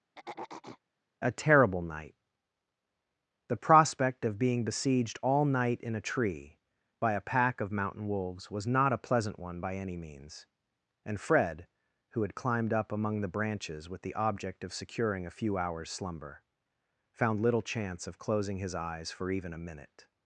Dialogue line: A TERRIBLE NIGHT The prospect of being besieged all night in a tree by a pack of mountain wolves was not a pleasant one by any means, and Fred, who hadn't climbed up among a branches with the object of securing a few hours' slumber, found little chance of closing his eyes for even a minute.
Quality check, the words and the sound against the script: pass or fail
fail